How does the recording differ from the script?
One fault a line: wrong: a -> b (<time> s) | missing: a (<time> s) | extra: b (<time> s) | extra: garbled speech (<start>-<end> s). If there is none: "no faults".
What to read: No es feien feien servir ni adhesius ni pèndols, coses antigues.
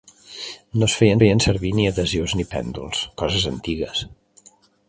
no faults